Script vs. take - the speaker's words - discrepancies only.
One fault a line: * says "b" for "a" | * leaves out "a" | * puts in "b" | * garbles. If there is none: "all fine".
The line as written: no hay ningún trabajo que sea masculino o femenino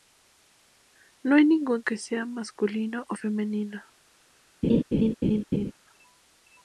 * leaves out "trabajo"